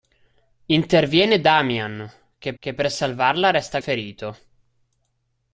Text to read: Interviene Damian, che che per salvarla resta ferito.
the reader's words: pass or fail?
pass